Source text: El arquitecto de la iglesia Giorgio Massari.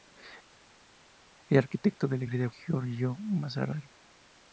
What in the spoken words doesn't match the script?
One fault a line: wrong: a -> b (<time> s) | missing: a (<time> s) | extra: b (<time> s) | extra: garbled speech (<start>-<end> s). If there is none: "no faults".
no faults